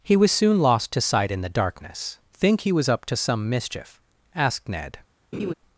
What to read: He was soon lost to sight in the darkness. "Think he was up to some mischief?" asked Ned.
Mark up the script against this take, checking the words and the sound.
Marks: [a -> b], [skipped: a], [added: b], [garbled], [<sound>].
He was soon lost to sight in the darkness. "Think he was up to some mischief?" asked Ned. [laugh]